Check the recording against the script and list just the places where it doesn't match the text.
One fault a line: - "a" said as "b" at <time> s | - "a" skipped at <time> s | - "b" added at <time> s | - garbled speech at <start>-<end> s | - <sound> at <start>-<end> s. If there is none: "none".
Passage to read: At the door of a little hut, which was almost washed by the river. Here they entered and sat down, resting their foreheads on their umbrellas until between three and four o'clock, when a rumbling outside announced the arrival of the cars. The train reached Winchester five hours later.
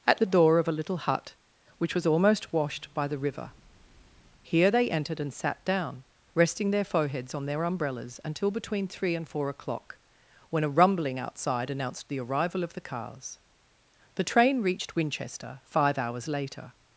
none